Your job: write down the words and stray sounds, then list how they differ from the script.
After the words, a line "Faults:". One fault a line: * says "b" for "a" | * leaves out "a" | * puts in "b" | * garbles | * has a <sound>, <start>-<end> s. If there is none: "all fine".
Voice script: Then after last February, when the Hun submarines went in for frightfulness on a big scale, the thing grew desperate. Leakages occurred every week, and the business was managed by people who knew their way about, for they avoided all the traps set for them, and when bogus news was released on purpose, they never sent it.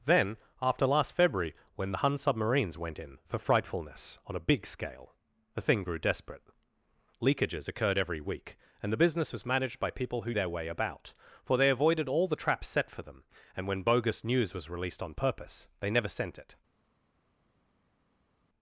Then after last February, when the Hun submarines went in for frightfulness on a big scale, the thing grew desperate. Leakages occurred every week, and the business was managed by people who their way about, for they avoided all the traps set for them, and when bogus news was released on purpose, they never sent it.
Faults:
* leaves out "knew"